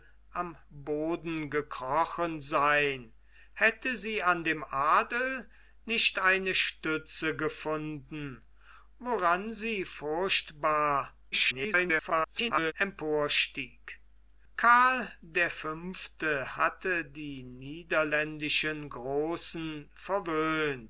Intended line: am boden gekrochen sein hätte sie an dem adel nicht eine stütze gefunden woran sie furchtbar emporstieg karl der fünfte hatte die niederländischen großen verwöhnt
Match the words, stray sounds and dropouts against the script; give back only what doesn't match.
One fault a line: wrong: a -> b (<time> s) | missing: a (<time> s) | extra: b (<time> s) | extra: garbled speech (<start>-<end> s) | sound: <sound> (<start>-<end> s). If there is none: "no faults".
extra: garbled speech (11.3-12.7 s)